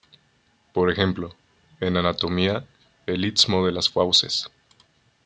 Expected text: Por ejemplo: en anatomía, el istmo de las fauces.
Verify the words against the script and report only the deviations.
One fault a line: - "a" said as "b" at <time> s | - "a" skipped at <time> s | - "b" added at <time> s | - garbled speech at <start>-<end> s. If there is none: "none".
none